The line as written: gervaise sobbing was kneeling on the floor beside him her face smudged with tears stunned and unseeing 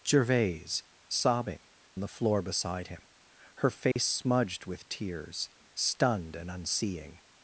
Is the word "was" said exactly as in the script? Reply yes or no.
no